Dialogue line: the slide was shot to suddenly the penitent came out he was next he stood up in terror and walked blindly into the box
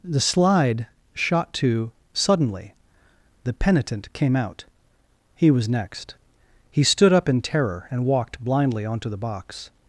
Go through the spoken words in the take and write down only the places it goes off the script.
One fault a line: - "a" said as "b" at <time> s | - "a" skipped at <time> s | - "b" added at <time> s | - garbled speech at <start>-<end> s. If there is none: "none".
- "was" skipped at 0.9 s
- "into" said as "onto" at 8.9 s